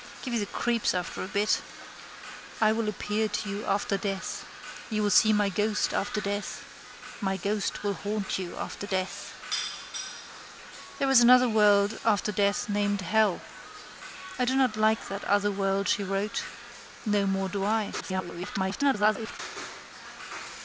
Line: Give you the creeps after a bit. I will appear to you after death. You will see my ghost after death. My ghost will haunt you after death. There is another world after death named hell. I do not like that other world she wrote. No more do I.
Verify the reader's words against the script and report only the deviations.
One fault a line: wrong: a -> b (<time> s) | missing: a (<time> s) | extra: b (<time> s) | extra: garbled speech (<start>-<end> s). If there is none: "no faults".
extra: garbled speech (18.0-19.4 s)